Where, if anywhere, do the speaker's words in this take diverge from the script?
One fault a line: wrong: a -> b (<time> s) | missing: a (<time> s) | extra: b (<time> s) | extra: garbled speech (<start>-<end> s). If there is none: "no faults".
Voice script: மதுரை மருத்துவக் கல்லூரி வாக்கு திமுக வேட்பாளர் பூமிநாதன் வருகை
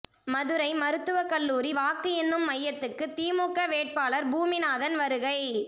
extra: எண்ணும் மையத்துக்கு (2.1 s)